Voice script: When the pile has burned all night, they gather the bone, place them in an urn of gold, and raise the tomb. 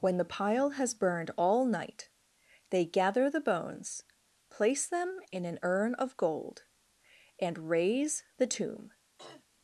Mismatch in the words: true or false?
true